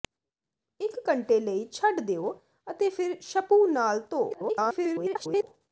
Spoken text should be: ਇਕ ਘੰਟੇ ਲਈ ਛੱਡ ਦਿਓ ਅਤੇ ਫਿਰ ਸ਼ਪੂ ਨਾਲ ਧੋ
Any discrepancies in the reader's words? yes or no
yes